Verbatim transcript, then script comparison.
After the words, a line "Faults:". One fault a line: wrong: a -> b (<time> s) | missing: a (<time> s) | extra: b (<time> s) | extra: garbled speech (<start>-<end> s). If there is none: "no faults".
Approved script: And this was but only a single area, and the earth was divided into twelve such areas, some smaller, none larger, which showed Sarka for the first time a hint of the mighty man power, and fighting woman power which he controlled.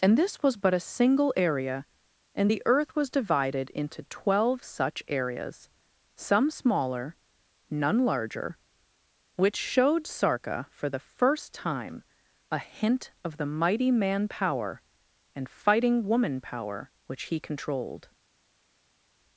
And this was but a single area, and the earth was divided into twelve such areas, some smaller, none larger, which showed Sarka for the first time a hint of the mighty man power, and fighting woman power which he controlled.
Faults:
missing: only (0.7 s)